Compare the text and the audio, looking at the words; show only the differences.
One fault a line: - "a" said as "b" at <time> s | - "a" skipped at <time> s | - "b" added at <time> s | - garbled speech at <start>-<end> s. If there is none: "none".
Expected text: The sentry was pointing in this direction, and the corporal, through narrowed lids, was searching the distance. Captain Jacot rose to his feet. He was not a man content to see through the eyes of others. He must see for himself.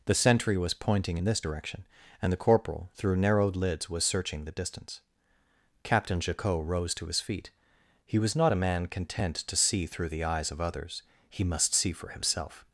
none